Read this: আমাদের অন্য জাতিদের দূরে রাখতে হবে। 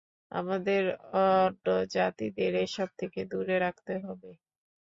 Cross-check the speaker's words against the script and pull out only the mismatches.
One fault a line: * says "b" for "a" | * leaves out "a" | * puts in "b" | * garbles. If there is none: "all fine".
* puts in "এসব থেকে"